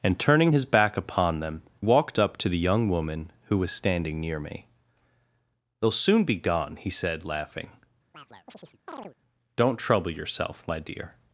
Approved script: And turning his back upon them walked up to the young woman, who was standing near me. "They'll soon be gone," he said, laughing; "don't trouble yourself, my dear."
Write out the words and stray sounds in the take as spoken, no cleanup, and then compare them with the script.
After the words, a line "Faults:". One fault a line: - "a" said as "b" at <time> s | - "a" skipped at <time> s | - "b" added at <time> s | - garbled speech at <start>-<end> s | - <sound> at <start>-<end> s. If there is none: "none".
And turning his back upon them walked up to the young woman, who was standing near me. "They'll soon be gone," he said, laughing; "don't trouble yourself, my dear."
Faults:
- chirp at 8.1-9.2 s